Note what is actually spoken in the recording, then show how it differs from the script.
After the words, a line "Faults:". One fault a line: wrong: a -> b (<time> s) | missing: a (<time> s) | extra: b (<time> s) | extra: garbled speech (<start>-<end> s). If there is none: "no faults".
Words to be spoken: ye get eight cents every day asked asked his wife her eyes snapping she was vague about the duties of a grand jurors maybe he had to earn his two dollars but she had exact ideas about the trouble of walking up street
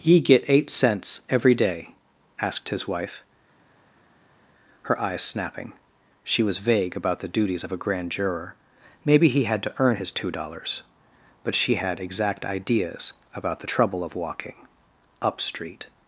ye get eight cents every day asked his wife her eyes snapping she was vague about the duties of a grand juror maybe he had to earn his two dollars but she had exact ideas about the trouble of walking up street
Faults:
missing: asked (2.7 s)
wrong: jurors -> juror (8.1 s)